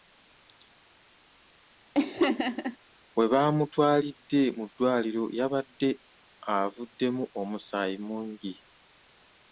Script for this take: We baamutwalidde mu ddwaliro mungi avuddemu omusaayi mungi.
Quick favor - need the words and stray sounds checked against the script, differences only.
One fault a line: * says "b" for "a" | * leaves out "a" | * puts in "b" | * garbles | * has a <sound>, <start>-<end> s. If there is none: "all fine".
* has a laugh, 1.9-2.8 s
* says "yabadde" for "mungi"